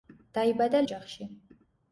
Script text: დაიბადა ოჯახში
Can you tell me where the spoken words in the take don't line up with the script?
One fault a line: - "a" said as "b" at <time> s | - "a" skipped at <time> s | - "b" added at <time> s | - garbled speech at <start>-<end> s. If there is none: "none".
none